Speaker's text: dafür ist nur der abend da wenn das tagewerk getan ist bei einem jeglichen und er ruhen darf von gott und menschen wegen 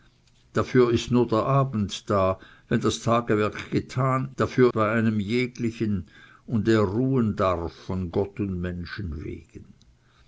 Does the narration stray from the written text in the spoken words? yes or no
yes